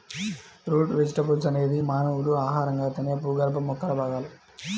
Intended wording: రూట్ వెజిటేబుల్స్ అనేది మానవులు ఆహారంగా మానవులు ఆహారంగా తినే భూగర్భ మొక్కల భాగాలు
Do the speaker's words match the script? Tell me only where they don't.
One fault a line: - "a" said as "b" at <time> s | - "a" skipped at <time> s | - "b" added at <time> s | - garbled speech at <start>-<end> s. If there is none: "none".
- "మానవులు ఆహారంగా" skipped at 2.9 s